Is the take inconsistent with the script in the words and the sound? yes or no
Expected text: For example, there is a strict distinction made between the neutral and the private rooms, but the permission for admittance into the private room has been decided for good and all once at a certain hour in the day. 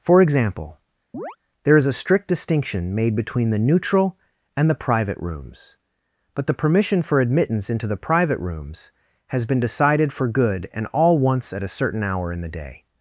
yes